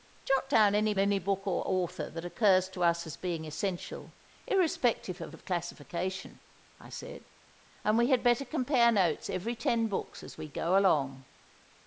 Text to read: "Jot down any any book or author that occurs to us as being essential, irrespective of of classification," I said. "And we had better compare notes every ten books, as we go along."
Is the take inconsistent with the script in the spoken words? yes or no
no